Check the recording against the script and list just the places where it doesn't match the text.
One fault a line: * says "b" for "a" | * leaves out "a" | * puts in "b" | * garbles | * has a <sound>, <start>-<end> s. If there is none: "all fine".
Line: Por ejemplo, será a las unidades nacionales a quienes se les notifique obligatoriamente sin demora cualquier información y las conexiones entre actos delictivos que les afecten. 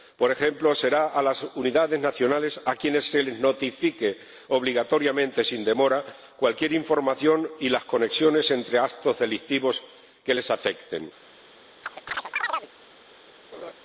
* has a chirp, 11.8-12.7 s
* has a laugh, 13.5-13.7 s